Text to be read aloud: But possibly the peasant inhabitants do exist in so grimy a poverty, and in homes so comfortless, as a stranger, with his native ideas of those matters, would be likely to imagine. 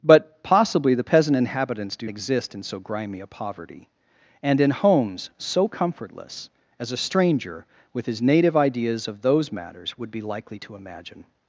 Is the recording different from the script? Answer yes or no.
no